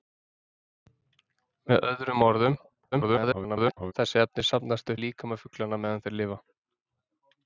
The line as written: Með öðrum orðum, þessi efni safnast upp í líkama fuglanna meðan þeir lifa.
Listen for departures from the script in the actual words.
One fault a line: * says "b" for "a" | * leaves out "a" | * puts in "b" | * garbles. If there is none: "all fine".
* garbles
* leaves out "upp"